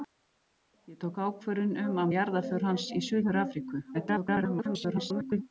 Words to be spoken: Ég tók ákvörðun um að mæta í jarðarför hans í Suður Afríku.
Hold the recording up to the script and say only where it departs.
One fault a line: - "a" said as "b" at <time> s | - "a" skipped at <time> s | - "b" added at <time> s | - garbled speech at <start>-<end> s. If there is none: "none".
- "mæta" skipped at 2.1 s
- garbled speech at 3.9-5.4 s